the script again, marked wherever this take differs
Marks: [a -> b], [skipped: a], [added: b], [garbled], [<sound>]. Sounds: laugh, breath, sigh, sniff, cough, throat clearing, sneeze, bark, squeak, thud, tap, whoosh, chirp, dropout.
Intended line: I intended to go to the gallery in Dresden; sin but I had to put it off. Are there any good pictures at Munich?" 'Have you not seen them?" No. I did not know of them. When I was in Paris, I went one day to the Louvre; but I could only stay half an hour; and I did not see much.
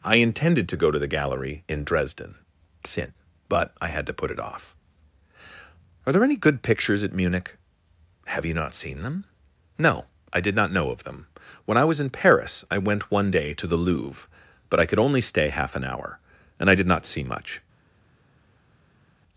I intended to go to the gallery in Dresden; sin but I had to put it off. Are there any good pictures at Munich?" 'Have you not seen them?" No. I did not know of them. When I was in Paris, I went one day to the Louvre; but I could only stay half an hour; and I did not see much.